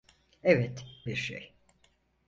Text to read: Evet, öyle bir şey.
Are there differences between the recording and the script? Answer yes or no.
yes